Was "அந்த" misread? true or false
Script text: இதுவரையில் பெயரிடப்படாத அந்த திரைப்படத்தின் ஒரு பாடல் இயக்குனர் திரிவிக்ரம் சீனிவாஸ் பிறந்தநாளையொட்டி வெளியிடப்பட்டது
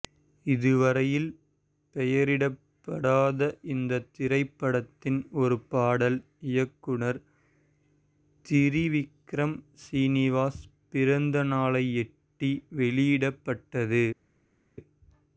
true